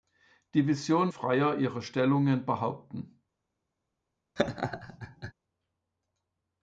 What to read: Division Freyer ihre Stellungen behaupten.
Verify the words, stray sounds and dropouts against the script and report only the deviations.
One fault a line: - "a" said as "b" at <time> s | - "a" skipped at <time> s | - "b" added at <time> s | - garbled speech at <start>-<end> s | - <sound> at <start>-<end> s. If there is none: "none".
- laugh at 4.4-5.3 s